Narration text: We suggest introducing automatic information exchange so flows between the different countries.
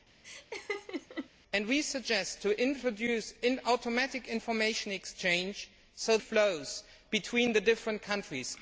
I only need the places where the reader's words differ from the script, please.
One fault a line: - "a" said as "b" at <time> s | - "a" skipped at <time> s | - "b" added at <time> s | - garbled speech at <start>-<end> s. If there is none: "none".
none